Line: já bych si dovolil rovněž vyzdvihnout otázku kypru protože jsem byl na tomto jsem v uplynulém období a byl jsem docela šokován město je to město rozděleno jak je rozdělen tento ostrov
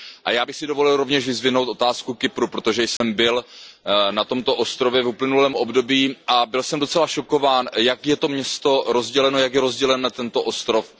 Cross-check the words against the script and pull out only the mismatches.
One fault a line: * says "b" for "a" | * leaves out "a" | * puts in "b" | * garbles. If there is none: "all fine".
* says "ostrově" for "jsem"
* says "jak" for "město"